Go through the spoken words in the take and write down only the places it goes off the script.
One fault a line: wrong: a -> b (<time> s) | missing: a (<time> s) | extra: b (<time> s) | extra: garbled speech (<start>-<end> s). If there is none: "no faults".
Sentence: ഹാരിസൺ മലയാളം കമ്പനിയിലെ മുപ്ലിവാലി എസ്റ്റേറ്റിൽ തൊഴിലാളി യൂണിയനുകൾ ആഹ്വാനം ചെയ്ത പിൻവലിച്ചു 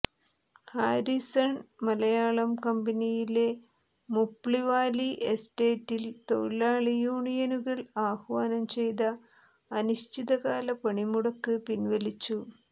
extra: അനിശ്ചിതകാല പണിമുടക്ക് (9.7 s)